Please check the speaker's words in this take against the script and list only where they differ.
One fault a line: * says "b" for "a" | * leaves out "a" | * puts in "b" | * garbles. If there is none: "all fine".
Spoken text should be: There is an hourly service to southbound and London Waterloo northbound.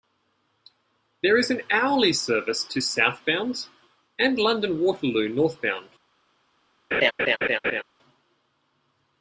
all fine